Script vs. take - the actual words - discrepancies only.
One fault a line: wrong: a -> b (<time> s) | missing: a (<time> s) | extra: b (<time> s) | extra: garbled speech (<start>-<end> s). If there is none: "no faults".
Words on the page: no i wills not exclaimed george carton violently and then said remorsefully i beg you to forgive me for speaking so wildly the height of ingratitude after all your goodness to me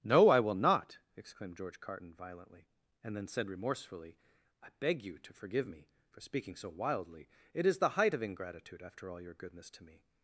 wrong: wills -> will (0.4 s)
extra: it is (7.5 s)